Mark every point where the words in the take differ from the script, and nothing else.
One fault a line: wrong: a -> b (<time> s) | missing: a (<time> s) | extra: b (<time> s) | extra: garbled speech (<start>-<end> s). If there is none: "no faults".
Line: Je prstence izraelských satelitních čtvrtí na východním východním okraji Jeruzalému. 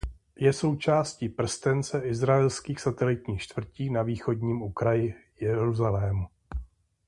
extra: součástí (0.5 s)
missing: východním (4.6 s)